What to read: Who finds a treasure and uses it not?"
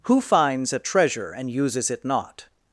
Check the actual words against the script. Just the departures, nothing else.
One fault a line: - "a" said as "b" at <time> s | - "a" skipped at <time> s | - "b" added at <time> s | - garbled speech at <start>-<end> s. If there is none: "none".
none